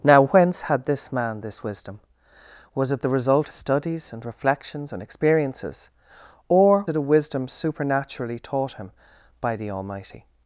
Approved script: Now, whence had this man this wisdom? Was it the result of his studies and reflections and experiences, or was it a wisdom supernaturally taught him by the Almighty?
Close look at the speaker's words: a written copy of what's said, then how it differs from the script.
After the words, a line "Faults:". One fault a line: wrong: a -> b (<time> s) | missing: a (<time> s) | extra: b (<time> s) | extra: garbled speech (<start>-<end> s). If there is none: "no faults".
Now, whence had this man this wisdom? Was it the result studies and reflections and experiences, or it a wisdom supernaturally taught him by the Almighty?
Faults:
missing: of his (3.5 s)
missing: was (6.8 s)